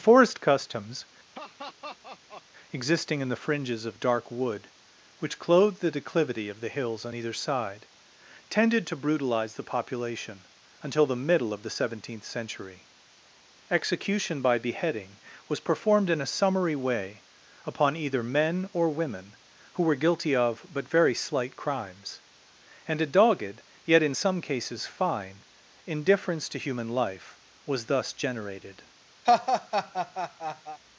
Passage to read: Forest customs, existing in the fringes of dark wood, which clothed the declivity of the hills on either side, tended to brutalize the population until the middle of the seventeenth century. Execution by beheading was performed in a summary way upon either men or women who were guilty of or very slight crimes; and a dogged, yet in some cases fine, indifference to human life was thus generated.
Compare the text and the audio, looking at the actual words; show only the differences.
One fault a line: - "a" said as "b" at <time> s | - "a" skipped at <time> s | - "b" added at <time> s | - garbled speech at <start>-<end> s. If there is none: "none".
- "or" said as "but" at 20.7 s